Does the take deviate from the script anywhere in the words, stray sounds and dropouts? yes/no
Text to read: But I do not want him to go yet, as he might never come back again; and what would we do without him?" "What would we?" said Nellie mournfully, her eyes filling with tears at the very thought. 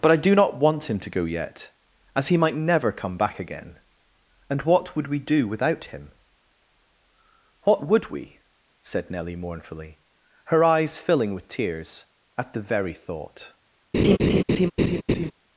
yes